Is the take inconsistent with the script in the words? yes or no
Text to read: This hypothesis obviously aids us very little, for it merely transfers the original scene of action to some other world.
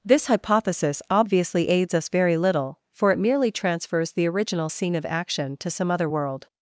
no